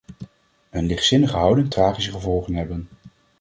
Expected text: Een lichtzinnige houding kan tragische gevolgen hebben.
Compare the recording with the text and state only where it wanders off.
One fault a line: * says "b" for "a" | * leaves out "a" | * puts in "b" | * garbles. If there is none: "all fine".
* leaves out "kan"